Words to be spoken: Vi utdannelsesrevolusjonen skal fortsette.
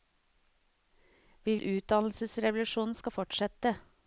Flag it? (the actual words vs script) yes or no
no